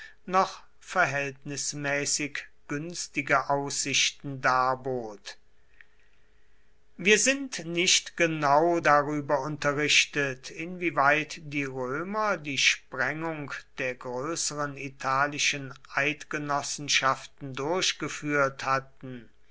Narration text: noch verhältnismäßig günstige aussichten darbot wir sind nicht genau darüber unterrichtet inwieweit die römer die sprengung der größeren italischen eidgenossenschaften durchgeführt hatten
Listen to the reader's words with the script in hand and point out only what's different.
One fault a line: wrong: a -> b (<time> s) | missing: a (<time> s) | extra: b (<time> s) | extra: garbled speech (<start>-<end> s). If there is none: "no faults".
no faults